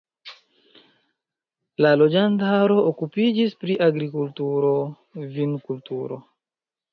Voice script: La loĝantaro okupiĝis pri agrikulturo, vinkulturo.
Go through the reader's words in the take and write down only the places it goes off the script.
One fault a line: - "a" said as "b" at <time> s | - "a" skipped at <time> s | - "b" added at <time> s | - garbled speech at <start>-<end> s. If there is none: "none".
none